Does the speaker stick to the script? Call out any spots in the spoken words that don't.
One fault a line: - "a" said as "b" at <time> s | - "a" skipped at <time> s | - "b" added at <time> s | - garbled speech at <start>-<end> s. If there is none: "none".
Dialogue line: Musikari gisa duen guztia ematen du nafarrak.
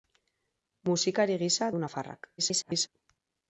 - "duen guztia ematen" skipped at 1.7 s
- garbled speech at 2.4-2.9 s